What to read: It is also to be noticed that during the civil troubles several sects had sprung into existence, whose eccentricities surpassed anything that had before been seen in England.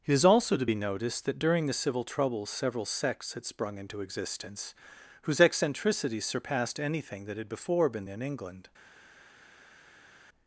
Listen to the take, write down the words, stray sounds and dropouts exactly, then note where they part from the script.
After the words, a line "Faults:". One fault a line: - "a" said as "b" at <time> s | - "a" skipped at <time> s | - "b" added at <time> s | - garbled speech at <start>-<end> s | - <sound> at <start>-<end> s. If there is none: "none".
It is also to be noticed that during the civil troubles several sects had sprung into existence, whose eccentricities surpassed anything that had before been in England.
Faults:
- "seen" skipped at 8.1 s